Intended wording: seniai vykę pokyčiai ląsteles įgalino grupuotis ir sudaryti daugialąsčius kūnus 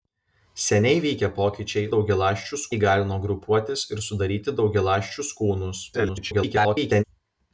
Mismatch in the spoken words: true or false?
true